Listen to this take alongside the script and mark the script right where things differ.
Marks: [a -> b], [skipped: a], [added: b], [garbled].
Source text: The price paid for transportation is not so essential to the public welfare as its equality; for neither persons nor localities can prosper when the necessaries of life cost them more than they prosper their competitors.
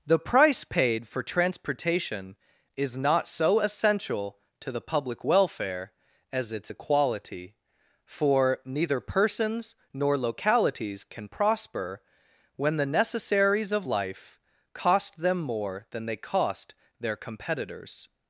The price paid for transportation is not so essential to the public welfare as its equality; for neither persons nor localities can prosper when the necessaries of life cost them more than they [prosper -> cost] their competitors.